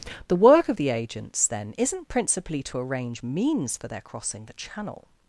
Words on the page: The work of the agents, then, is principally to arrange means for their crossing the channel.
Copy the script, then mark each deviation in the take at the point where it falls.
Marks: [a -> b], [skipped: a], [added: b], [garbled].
The work of the agents, then, [is -> isn't] principally to arrange means for their crossing the channel.